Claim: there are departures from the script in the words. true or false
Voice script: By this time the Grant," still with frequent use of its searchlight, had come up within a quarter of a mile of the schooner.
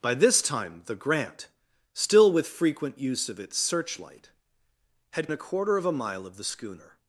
true